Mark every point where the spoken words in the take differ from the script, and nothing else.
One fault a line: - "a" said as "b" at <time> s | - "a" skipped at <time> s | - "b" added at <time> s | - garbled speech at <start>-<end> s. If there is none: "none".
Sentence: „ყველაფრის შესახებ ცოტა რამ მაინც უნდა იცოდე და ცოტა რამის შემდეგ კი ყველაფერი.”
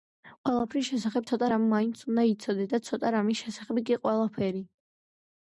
- "შემდეგ" said as "შესახებ" at 3.5 s